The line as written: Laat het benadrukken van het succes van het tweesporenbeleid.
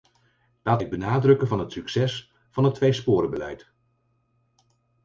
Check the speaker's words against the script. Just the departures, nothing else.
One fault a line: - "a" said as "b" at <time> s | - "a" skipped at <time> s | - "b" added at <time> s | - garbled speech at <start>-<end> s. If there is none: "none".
none